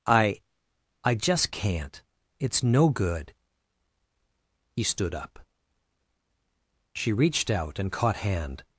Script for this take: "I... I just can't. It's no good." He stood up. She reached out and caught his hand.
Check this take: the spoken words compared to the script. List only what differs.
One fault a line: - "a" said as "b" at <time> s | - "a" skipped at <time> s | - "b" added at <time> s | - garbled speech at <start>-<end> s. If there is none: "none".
- "his" skipped at 8.2 s